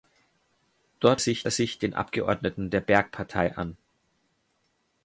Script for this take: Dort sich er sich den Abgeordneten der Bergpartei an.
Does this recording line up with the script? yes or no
yes